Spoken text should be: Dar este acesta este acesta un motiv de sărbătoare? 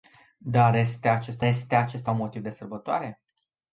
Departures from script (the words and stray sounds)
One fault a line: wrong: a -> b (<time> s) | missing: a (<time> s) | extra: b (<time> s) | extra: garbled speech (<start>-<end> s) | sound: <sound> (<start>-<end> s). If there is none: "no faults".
no faults